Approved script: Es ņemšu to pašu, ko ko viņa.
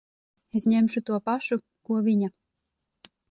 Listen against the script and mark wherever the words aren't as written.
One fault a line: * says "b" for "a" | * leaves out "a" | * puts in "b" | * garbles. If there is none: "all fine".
* leaves out "ko"